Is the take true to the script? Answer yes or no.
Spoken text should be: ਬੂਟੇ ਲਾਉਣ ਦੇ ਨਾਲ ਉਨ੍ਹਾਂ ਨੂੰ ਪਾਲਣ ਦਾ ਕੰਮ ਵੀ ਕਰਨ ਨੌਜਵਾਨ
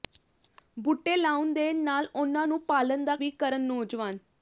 no